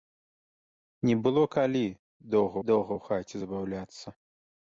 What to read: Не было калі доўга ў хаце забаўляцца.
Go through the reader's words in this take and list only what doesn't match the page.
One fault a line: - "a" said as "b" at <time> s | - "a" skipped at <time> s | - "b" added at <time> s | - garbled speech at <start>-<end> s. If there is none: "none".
- "доўга" added at 2.7 s